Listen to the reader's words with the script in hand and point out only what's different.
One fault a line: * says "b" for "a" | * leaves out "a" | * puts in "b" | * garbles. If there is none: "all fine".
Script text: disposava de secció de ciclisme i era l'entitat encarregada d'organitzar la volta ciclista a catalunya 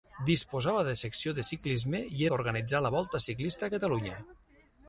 * leaves out "era l'entitat encarregada"